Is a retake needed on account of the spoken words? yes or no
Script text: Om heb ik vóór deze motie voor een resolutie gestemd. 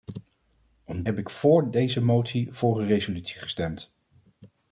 no